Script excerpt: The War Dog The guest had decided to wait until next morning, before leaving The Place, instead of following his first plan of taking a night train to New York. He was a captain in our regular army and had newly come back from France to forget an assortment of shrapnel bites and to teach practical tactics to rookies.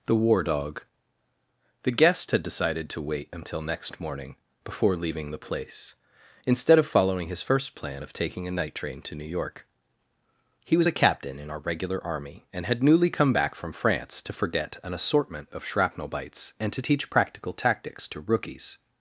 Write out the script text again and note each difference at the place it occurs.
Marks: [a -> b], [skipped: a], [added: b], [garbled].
The War Dog The guest had decided to wait until next morning, before leaving The Place, instead of following his first plan of taking a night train to New York. He was a captain in our regular army and had newly come back from France to forget an assortment of shrapnel bites and to teach practical tactics to rookies.